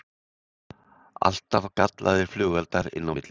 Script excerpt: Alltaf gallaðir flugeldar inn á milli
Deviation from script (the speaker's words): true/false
false